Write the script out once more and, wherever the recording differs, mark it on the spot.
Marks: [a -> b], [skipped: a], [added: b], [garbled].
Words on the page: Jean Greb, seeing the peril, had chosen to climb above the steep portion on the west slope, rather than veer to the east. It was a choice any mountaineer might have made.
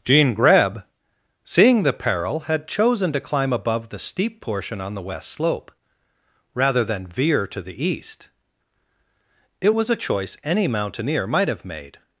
Jean Greb, seeing the peril, had chosen to climb above the steep portion on the west slope, rather than veer to the east. It was a choice any mountaineer might have made.